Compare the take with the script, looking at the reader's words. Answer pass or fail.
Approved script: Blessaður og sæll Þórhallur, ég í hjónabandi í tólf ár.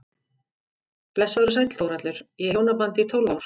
pass